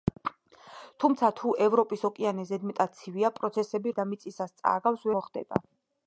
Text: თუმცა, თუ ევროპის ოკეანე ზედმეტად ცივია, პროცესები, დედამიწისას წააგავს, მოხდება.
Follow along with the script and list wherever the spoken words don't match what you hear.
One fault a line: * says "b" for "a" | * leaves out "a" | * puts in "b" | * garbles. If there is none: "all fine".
all fine